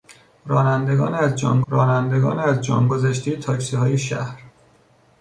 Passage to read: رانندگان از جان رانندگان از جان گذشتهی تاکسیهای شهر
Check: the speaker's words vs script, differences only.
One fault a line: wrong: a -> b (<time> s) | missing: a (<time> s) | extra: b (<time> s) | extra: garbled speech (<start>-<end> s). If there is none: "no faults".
no faults